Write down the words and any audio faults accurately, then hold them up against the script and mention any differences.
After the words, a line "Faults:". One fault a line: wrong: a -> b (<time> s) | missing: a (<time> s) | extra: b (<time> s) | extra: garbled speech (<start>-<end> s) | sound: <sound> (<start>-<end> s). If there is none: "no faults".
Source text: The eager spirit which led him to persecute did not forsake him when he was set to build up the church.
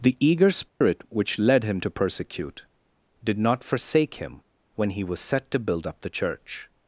The eager spirit which led him to persecute did not forsake him when he was set to build up the church.
Faults:
sound: dropout (0.7-0.8 s)